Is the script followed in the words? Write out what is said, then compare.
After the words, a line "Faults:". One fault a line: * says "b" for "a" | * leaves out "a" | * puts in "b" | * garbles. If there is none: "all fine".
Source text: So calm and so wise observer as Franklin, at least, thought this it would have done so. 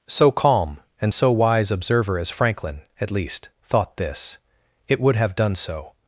So calm and so wise observer as Franklin, at least, thought this it would have done so.
Faults:
all fine